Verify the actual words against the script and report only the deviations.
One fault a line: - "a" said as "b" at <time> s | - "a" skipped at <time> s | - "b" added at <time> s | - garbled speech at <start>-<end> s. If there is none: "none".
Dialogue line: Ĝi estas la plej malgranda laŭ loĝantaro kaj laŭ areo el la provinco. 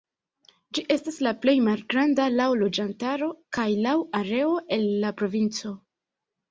none